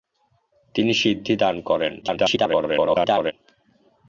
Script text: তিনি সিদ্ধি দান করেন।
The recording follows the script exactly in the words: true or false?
false